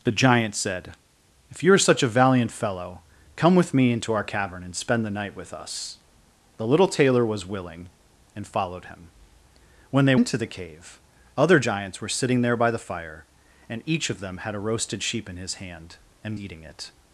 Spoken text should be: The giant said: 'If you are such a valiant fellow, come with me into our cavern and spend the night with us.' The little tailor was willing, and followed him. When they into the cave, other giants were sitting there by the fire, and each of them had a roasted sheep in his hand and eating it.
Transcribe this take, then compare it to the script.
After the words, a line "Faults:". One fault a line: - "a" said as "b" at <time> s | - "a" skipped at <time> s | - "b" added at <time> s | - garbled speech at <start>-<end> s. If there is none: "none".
The giant said: 'If you are such a valiant fellow, come with me into our cavern and spend the night with us.' The little tailor was willing, and followed him. When they into the cave, other giants were sitting there by the fire, and each of them had a roasted sheep in his hand and eating it.
Faults:
none